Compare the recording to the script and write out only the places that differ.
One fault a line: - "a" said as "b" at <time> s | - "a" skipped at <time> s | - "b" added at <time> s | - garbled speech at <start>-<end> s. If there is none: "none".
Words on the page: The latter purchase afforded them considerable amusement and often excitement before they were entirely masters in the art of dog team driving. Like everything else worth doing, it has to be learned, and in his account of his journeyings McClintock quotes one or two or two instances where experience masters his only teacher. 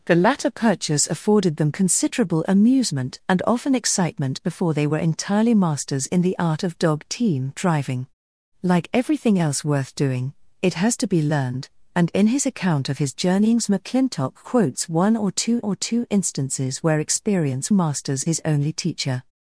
none